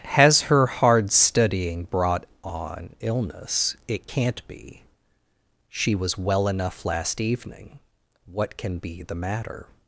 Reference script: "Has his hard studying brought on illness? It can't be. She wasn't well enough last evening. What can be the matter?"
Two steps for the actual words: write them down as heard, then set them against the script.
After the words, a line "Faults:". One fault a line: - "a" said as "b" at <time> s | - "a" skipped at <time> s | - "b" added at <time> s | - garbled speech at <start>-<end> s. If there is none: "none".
"Has her hard studying brought on illness? It can't be. She was well enough last evening. What can be the matter?"
Faults:
- "his" said as "her" at 0.4 s
- "wasn't" said as "was" at 5.9 s